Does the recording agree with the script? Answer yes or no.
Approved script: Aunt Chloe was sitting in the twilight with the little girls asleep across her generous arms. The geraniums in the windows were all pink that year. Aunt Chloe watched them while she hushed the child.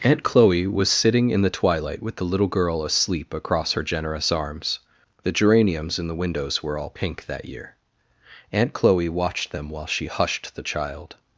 no